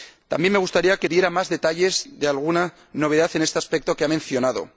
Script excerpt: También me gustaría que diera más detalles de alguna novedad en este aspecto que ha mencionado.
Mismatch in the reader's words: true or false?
false